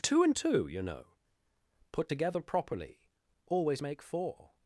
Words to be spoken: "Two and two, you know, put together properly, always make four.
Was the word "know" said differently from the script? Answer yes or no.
no